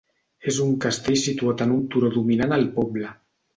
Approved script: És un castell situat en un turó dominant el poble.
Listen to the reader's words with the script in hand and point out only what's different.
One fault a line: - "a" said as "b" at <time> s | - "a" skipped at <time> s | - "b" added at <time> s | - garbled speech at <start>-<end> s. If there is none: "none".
none